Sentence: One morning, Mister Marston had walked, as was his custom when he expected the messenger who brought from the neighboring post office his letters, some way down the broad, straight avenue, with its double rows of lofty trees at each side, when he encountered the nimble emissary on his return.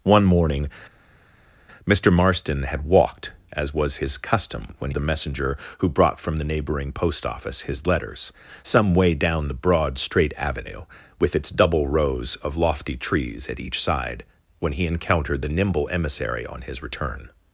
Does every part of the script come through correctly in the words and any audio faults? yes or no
no